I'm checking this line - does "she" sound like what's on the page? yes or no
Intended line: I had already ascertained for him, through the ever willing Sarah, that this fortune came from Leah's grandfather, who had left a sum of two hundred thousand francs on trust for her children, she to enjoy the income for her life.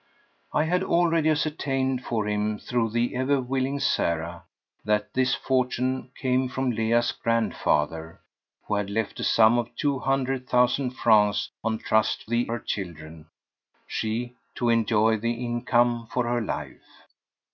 yes